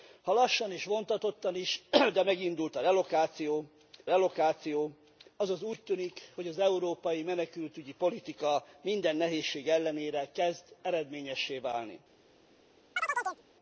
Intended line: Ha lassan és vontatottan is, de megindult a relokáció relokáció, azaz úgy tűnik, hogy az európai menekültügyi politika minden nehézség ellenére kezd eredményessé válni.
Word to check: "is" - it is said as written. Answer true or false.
true